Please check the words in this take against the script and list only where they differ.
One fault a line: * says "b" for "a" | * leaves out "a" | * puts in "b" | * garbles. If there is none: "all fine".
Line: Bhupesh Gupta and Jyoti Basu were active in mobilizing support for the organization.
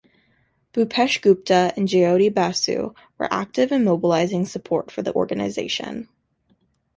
all fine